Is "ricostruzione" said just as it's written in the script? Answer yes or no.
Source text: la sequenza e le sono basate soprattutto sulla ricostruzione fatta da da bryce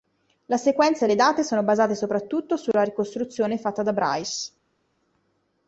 yes